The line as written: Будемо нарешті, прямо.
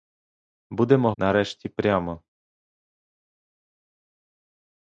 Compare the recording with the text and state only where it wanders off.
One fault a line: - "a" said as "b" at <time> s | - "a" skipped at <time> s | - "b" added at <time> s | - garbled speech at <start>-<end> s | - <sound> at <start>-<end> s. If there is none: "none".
none